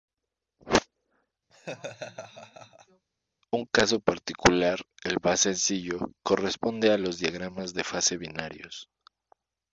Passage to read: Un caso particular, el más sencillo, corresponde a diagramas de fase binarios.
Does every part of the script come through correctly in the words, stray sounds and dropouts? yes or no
no